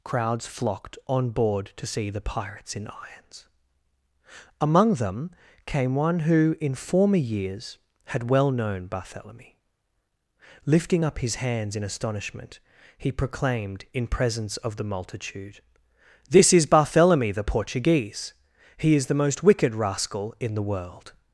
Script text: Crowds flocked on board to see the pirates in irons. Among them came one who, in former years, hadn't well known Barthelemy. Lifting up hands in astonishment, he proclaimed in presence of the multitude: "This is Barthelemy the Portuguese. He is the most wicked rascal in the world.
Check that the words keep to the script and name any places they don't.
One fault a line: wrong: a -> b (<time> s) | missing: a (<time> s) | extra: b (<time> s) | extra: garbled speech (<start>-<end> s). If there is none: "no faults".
wrong: hadn't -> had (8.1 s)
extra: his (11.2 s)